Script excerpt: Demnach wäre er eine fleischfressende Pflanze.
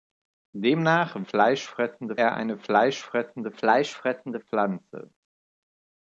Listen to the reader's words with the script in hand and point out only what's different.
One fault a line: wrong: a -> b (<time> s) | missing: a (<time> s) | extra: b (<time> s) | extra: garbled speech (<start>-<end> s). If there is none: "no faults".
wrong: wäre -> fleischfressende (1.2 s)
extra: fleischfressende (3.5 s)